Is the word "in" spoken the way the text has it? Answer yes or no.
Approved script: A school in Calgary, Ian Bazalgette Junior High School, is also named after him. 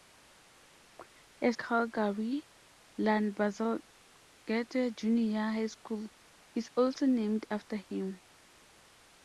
no